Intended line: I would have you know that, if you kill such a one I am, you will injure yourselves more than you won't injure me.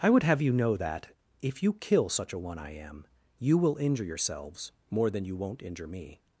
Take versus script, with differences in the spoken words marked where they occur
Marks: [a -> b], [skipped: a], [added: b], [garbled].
I would have you know that, if you kill such a one I am, you will injure yourselves more than you won't injure me.